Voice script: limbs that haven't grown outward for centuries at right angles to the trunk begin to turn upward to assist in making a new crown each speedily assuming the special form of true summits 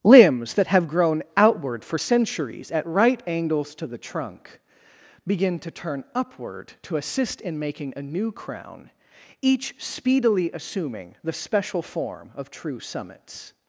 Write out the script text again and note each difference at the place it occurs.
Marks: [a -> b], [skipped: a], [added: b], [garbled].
limbs that [haven't -> have] grown outward for centuries at right angles to the trunk begin to turn upward to assist in making a new crown each speedily assuming the special form of true summits